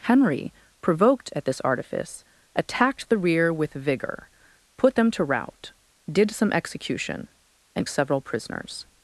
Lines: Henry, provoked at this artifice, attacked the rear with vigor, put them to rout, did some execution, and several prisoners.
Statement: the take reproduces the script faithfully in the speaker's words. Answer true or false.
true